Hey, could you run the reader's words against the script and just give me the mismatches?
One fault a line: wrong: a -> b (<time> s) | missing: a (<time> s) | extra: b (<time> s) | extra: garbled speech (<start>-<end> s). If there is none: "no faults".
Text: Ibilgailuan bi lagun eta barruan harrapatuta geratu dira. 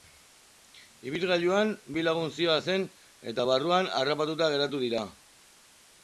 extra: zihoazen (2.4 s)